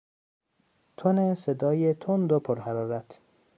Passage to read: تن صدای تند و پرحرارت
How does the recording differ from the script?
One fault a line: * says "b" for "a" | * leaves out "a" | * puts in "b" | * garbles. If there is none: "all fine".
all fine